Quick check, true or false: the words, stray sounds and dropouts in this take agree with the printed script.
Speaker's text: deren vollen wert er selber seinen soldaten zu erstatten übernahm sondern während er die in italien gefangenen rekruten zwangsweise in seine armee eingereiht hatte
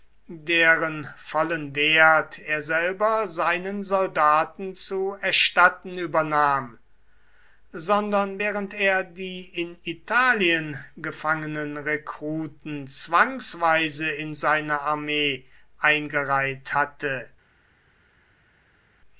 true